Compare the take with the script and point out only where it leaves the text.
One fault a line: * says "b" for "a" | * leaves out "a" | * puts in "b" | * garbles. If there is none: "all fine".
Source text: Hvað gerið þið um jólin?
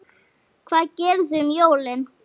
all fine